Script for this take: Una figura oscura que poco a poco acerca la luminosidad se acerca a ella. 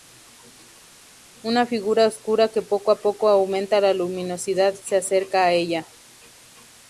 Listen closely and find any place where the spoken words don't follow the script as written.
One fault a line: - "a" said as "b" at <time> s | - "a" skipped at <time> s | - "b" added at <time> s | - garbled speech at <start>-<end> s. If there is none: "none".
- "acerca" said as "aumenta" at 3.3 s